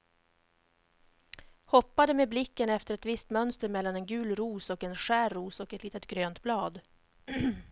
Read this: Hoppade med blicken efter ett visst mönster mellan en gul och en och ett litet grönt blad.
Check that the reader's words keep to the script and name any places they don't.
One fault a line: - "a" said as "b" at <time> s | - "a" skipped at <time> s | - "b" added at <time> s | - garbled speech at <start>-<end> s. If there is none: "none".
- "ros" added at 4.3 s
- "skär ros" added at 5.0 s